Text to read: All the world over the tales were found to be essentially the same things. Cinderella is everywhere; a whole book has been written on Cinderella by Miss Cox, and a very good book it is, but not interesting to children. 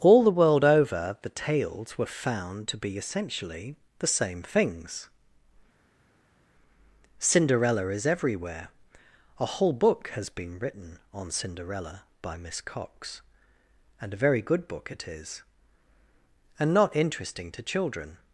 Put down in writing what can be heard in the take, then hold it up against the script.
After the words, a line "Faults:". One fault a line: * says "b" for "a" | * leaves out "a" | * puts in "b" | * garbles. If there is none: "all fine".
All the world over the tales were found to be essentially the same things. Cinderella is everywhere; a whole book has been written on Cinderella by Miss Cox, and a very good book it is, and not interesting to children.
Faults:
* says "and" for "but"